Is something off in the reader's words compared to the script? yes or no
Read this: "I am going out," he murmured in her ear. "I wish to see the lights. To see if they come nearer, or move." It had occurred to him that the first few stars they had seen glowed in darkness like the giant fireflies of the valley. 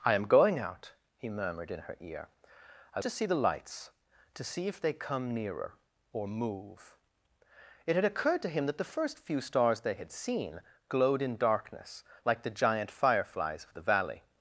yes